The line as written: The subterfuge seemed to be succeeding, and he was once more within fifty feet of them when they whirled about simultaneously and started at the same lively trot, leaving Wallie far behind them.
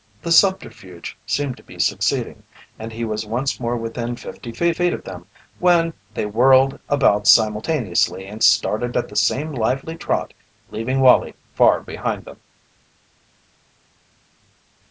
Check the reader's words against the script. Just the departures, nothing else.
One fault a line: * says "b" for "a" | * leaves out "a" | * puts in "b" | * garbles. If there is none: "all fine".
* puts in "feet"